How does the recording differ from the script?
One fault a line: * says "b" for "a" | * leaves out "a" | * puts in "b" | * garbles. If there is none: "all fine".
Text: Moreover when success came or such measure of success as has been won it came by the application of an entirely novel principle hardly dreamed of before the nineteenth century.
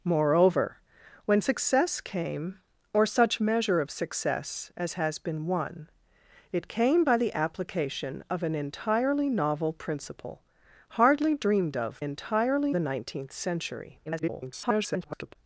* says "entirely" for "before"
* garbles